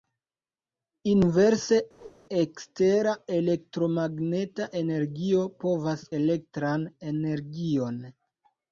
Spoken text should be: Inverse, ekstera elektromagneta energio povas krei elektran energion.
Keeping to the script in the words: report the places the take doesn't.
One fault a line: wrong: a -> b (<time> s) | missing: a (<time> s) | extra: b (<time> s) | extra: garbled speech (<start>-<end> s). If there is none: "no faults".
missing: krei (6.1 s)